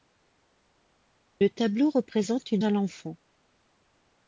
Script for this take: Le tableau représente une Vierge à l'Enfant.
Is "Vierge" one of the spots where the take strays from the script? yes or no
yes